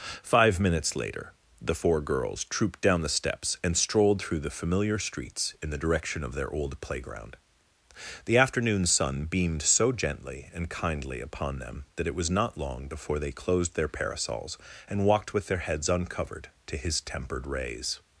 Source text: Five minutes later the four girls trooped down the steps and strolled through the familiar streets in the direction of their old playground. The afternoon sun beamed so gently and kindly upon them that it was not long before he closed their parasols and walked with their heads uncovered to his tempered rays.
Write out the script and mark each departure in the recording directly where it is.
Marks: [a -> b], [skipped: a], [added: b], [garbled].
Five minutes later the four girls trooped down the steps and strolled through the familiar streets in the direction of their old playground. The afternoon sun beamed so gently and kindly upon them that it was not long before [he -> they] closed their parasols and walked with their heads uncovered to his tempered rays.